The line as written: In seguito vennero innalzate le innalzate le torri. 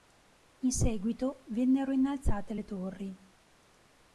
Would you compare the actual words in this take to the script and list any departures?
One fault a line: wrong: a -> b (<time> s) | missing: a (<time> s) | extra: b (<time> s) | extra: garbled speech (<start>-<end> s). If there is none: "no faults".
missing: innalzate le (2.6 s)